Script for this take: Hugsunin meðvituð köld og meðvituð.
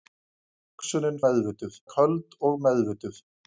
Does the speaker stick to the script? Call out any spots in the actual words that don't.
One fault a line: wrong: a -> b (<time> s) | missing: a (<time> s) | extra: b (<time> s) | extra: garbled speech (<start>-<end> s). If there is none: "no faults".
no faults